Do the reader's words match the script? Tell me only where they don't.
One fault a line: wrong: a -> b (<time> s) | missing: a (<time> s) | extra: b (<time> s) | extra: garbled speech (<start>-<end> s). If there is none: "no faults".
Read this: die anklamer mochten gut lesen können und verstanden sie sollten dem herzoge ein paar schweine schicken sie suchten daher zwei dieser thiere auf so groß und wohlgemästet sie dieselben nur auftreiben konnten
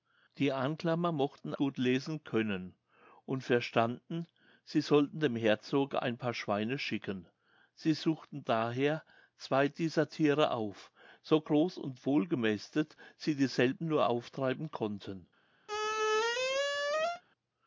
no faults